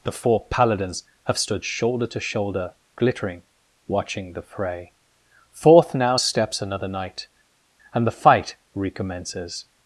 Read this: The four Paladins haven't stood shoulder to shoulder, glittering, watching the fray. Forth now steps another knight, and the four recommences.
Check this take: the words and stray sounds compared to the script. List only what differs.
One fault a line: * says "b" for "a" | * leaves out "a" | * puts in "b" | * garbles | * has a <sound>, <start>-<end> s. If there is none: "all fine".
* says "have" for "haven't"
* says "fight" for "four"